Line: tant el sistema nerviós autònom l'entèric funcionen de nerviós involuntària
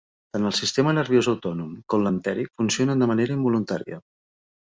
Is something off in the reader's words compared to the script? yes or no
yes